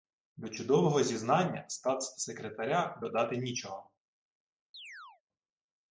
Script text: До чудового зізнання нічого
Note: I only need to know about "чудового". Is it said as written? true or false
true